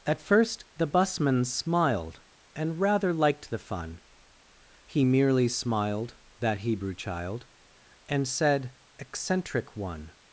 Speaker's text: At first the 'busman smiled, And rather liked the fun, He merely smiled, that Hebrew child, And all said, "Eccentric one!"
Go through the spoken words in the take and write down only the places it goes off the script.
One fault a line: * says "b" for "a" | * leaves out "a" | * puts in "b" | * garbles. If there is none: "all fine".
* leaves out "all"